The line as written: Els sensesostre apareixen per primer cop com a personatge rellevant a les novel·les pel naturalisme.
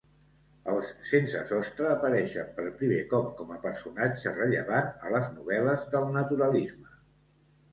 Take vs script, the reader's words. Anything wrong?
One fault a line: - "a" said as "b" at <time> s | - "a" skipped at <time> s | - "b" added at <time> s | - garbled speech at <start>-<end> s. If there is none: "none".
- "pel" said as "del" at 5.9 s